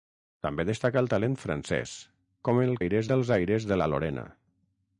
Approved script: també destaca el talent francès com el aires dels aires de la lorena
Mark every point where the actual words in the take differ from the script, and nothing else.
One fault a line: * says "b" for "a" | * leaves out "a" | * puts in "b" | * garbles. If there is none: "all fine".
all fine